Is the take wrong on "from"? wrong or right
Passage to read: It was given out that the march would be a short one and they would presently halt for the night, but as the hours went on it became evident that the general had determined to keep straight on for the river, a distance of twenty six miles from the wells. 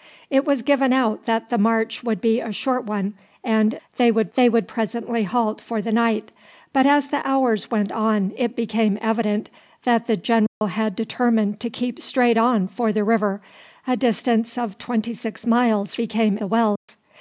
wrong